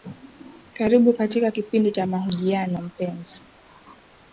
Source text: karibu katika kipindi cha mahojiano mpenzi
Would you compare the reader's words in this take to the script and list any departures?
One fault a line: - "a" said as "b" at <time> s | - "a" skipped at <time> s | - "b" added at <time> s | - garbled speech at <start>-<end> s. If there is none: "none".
none